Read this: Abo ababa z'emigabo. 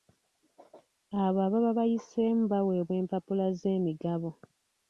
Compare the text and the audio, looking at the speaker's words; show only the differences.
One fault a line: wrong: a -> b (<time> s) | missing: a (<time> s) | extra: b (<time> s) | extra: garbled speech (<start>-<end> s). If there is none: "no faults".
extra: bayiseemu baweebwa empapula (1.8 s)